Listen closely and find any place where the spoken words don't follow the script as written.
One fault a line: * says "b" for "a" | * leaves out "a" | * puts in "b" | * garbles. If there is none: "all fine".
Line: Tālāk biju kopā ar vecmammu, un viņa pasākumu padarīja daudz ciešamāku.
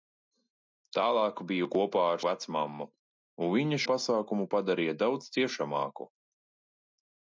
all fine